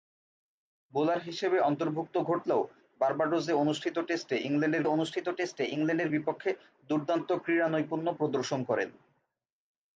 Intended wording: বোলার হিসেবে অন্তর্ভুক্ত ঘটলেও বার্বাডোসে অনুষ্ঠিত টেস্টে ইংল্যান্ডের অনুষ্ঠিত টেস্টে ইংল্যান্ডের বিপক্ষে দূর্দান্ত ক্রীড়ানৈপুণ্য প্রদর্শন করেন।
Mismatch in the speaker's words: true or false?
false